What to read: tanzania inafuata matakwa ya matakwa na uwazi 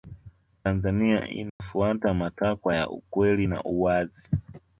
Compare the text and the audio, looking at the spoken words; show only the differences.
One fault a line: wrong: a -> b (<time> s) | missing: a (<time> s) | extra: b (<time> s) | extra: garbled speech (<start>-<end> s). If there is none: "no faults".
wrong: matakwa -> ukweli (2.9 s)